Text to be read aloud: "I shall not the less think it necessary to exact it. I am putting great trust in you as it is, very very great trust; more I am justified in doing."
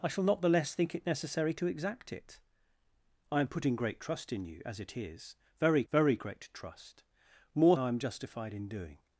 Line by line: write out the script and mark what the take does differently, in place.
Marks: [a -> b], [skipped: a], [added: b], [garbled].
"I shall not the less think it necessary to exact it. I am putting great trust in you as it is, very very great trust; more I am justified in doing."